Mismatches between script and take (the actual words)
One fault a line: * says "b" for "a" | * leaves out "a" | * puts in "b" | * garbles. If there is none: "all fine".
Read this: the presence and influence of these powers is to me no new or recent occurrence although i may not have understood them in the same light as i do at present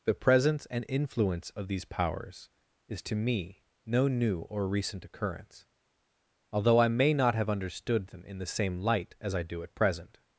all fine